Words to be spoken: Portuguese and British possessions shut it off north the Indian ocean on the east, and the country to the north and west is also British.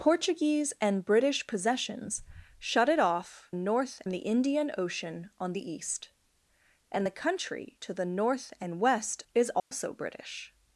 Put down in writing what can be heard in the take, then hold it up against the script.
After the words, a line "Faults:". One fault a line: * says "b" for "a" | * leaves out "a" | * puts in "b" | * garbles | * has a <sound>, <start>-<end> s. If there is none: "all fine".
Portuguese and British possessions shut it off north the Indian ocean on the east, and the country to the north and west is also British.
Faults:
* has a dropout, 9.6-9.7 s